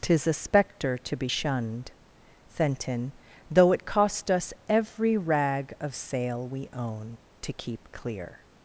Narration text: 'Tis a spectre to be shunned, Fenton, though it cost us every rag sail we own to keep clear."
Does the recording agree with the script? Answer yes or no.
no